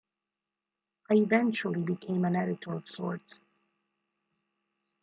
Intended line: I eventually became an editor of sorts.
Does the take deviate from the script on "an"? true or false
false